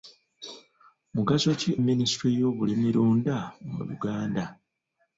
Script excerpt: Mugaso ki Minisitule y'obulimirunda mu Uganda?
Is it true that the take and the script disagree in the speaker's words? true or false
false